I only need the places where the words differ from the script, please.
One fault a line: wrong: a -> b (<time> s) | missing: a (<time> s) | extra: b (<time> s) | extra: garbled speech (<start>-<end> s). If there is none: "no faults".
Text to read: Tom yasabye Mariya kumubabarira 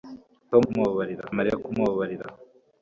wrong: yasabye -> kumubabarira (0.6 s)